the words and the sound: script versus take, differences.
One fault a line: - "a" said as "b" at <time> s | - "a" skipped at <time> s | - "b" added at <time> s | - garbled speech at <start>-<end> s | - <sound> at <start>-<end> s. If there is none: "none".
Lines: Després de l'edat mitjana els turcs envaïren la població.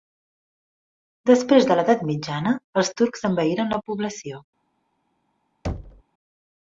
- thud at 5.6-6.0 s